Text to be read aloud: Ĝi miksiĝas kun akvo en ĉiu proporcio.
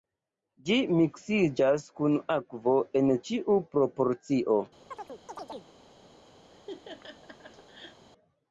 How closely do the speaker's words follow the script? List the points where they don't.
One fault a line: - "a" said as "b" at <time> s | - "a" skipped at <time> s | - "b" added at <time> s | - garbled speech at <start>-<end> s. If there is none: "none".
none